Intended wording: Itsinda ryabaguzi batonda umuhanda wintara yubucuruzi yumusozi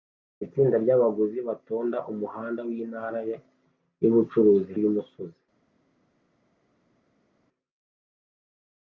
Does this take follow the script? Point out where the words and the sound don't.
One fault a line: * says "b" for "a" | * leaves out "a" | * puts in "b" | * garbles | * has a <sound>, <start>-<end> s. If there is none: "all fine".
all fine